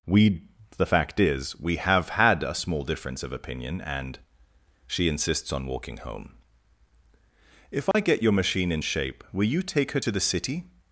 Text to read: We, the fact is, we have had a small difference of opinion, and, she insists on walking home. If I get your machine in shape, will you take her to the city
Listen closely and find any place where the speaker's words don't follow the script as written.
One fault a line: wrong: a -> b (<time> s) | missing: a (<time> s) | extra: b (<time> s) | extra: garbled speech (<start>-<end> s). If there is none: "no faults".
no faults